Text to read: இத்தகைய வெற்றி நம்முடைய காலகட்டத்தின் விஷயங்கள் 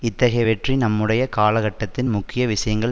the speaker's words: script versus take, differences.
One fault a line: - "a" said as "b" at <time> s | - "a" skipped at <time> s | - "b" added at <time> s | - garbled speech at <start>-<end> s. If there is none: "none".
- "முக்கிய" added at 2.1 s